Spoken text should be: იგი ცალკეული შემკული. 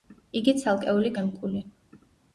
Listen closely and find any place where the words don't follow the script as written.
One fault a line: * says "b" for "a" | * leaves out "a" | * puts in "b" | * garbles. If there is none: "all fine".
all fine